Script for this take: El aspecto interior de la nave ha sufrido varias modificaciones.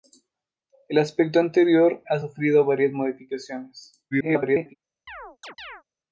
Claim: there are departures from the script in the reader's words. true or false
true